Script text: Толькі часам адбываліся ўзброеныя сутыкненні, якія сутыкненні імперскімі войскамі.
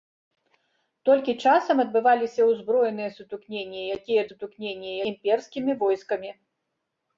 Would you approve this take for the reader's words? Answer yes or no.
yes